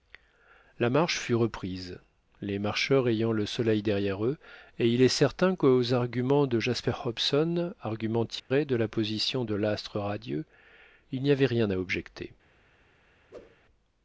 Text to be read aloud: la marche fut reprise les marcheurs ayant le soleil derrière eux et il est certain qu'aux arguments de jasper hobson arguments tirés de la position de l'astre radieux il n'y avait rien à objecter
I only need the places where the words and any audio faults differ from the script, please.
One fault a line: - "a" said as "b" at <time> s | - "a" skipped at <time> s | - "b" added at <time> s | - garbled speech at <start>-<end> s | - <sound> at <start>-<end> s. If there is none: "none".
- dropout at 8.4-8.5 s
- whoosh at 13.3-13.6 s